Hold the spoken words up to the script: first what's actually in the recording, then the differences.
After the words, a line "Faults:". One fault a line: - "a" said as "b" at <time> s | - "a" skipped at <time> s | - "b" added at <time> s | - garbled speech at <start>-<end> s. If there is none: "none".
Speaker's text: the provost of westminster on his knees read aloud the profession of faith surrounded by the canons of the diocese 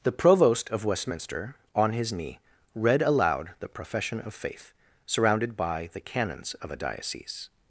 the provost of westminster on his knee read aloud the profession of faith surrounded by the canons of a diocese
Faults:
- "knees" said as "knee" at 2.1 s
- "the" said as "a" at 6.7 s